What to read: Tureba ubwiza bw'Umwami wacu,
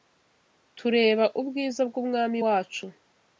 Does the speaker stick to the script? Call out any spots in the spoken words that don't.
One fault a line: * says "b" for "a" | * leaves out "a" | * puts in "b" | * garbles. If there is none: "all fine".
all fine